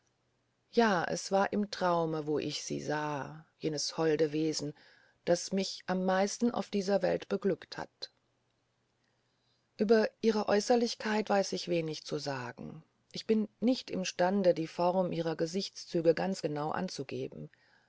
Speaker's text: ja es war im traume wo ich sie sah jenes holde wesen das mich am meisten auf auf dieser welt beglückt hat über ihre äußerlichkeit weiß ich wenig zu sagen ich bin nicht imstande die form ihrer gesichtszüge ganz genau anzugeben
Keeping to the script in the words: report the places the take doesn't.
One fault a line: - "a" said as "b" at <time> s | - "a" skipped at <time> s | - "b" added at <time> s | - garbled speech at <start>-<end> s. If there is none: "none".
- "auf" skipped at 6.7 s